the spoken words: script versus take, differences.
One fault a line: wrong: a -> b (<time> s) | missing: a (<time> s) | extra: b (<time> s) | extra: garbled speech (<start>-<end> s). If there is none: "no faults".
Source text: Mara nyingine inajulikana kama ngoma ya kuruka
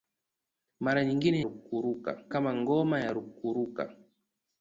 wrong: inajulikana -> kuruka (1.4 s)